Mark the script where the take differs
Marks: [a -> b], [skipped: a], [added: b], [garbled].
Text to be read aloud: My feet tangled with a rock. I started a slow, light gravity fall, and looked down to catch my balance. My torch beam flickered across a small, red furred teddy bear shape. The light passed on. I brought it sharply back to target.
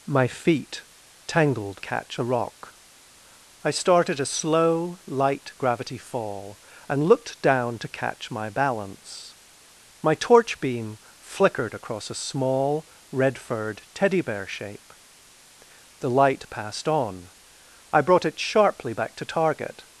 My feet tangled [with -> catch] a rock. I started a slow, light gravity fall, and looked down to catch my balance. My torch beam flickered across a small, red furred teddy bear shape. The light passed on. I brought it sharply back to target.